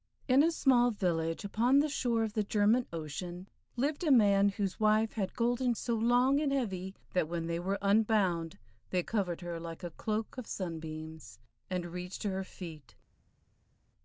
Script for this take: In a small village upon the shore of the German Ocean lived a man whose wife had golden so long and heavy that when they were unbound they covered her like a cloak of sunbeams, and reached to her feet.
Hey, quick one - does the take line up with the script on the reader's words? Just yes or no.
yes